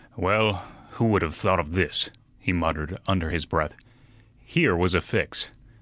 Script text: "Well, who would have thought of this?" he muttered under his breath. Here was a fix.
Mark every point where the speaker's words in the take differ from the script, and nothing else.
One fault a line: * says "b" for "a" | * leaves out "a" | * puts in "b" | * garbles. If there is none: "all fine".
all fine